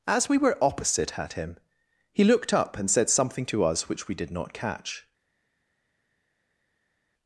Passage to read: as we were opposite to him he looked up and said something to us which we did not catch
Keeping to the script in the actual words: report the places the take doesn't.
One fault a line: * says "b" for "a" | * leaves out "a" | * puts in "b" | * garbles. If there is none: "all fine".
* says "at" for "to"